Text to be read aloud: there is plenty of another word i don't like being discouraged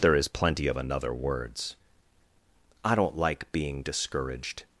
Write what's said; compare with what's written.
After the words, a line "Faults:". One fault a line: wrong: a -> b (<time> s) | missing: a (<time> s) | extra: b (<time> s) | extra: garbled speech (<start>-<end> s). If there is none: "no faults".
there is plenty of another words i don't like being discouraged
Faults:
wrong: word -> words (1.1 s)